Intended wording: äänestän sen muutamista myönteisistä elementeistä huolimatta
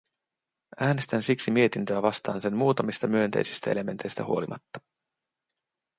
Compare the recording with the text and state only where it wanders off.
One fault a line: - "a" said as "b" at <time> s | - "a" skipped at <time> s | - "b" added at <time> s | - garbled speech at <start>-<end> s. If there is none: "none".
- "siksi mietintöä vastaan" added at 1.2 s